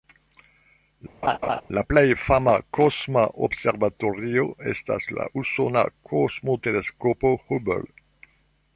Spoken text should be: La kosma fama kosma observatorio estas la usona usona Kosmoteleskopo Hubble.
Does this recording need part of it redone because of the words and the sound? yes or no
yes